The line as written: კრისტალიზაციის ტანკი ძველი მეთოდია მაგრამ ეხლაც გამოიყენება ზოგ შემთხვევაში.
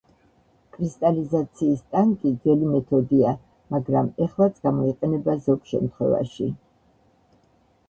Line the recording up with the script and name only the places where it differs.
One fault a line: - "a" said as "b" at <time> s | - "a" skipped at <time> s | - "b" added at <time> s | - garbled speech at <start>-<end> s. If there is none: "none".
none